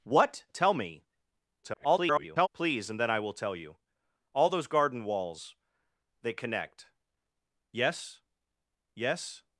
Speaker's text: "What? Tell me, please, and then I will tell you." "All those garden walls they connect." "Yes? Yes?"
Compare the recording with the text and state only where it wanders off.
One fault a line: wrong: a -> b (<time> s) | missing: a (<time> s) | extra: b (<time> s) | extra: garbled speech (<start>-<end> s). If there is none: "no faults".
extra: garbled speech (1.6-2.5 s)